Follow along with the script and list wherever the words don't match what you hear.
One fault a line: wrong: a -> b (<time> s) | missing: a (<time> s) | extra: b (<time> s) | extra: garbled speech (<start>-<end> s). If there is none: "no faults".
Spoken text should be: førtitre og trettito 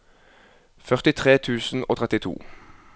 extra: tusen (1.4 s)